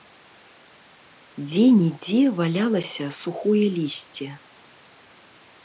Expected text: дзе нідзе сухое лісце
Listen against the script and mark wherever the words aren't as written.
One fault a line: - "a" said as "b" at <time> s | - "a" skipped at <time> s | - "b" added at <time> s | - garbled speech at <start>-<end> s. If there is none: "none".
- "валялася" added at 2.4 s